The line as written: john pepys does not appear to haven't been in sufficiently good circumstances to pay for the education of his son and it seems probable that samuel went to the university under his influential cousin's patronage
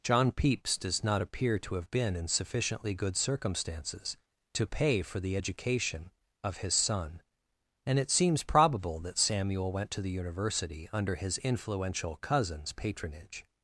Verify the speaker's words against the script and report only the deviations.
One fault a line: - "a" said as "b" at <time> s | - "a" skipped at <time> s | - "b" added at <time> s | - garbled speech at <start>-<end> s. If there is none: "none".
- "haven't" said as "have" at 1.8 s